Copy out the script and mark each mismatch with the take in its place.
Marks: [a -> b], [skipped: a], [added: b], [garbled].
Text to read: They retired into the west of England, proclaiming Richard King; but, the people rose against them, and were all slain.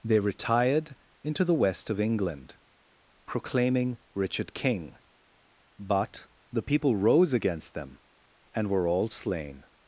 They retired into the west of England, proclaiming Richard King; but, the people rose against them, and were all slain.